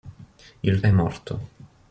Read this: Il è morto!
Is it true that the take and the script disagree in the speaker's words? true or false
false